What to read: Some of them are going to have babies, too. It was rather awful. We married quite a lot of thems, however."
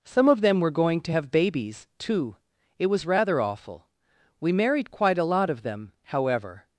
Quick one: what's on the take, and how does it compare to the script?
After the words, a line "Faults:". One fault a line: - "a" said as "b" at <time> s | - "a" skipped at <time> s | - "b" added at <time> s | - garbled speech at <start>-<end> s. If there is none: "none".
Some of them were going to have babies, too. It was rather awful. We married quite a lot of them, however."
Faults:
- "are" said as "were" at 0.6 s
- "thems" said as "them" at 5.6 s